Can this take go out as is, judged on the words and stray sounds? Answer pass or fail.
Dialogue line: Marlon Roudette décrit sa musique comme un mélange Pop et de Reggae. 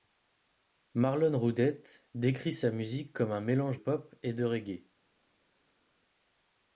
pass